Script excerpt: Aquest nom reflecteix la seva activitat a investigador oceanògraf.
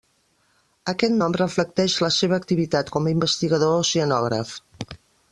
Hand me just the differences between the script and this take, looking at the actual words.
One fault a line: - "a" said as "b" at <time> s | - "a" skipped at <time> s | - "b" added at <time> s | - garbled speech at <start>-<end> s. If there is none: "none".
- "com" added at 3.0 s